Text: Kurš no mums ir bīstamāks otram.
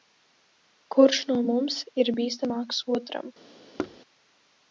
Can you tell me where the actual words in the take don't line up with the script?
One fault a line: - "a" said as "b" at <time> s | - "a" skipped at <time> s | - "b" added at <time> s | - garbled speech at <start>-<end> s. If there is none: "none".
none